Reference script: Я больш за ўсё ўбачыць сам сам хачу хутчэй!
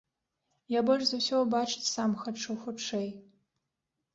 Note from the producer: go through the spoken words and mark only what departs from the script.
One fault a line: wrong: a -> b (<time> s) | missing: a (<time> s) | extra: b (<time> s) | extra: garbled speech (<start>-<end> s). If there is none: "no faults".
missing: сам (2.1 s)